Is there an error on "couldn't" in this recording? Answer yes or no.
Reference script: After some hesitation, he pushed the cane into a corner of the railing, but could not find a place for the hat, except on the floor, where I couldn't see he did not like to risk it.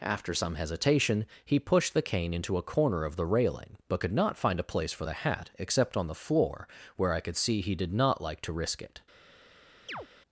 yes